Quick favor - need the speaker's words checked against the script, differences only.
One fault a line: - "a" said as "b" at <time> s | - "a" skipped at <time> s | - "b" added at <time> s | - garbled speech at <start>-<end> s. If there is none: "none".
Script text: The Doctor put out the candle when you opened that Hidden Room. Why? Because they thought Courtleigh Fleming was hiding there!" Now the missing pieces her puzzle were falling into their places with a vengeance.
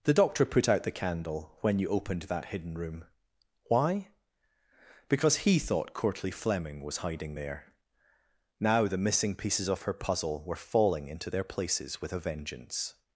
- "they" said as "he" at 5.4 s
- "of" added at 9.7 s